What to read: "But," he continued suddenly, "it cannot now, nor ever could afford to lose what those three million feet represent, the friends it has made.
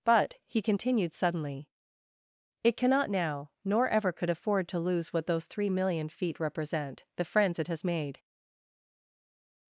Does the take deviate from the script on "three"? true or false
false